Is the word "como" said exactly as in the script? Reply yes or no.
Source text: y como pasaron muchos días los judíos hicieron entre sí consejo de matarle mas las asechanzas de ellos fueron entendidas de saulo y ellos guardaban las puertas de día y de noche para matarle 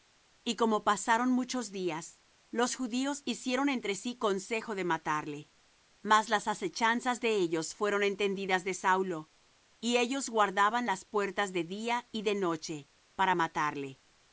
yes